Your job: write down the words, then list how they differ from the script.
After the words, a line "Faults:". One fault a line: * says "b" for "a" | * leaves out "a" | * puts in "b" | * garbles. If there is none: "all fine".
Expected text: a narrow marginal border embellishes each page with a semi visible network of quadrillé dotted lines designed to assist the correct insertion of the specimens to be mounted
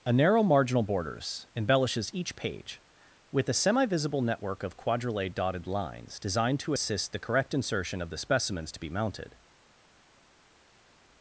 a narrow marginal borders embellishes each page with a semi visible network of quadrillé dotted lines designed to assist the correct insertion of the specimens to be mounted
Faults:
* says "borders" for "border"